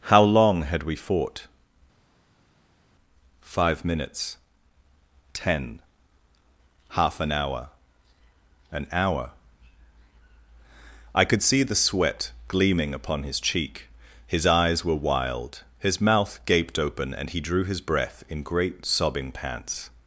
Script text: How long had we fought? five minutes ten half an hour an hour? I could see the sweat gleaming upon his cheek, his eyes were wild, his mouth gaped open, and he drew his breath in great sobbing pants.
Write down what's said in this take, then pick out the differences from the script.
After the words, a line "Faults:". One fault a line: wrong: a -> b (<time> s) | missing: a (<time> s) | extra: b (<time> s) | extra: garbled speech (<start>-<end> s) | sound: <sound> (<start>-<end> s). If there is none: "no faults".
How long had we fought? five minutes ten half an hour an hour? I could see the sweat gleaming upon his cheek, his eyes were wild, his mouth gaped open, and he drew his breath in great sobbing pants.
Faults:
no faults